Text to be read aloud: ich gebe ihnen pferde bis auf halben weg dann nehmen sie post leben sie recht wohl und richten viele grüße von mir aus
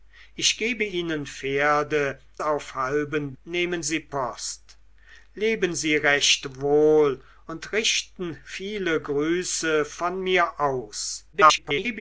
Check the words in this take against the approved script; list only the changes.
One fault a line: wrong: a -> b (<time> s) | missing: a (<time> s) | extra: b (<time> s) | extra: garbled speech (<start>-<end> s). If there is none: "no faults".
missing: bis (2.2 s)
missing: weg dann (3.4 s)
extra: garbled speech (11.3-12.0 s)